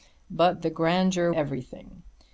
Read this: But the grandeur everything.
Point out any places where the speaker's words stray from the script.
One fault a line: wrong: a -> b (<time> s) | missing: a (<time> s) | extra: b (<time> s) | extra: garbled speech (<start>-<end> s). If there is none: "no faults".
no faults